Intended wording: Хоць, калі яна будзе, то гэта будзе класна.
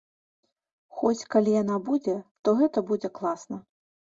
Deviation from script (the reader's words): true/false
false